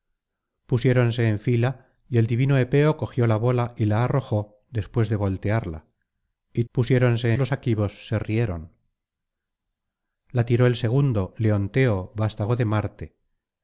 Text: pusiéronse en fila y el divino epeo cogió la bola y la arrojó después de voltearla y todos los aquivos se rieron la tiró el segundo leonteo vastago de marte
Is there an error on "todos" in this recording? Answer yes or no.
yes